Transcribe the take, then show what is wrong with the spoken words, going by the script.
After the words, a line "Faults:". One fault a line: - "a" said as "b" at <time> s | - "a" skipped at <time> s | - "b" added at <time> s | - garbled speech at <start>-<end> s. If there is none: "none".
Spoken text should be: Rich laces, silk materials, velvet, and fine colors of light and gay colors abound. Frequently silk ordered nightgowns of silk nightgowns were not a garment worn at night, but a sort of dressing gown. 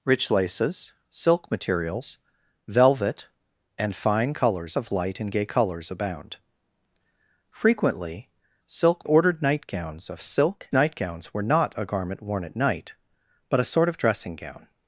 Rich laces, silk materials, velvet, and fine colors of light and gay colors abound. Frequently silk ordered nightgowns of silk nightgowns were not a garment worn at night, but a sort of dressing gown.
Faults:
none